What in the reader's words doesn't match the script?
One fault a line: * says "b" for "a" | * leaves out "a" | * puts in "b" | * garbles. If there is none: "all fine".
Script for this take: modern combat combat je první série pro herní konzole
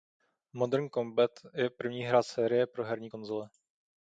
* leaves out "combat"
* puts in "hra"